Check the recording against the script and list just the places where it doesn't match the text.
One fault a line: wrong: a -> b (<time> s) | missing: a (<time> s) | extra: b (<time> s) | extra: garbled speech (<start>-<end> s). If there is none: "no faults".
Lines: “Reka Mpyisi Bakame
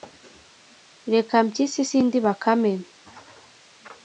extra: sindi (1.9 s)